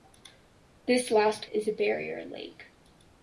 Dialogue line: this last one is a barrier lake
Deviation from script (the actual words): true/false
true